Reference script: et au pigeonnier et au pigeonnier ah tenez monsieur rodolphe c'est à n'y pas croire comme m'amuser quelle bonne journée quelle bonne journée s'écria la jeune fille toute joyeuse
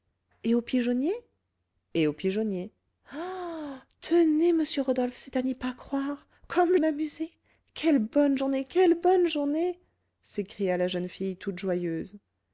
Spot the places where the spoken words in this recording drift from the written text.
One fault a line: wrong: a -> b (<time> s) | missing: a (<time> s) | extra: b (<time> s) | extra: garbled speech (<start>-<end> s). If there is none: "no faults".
no faults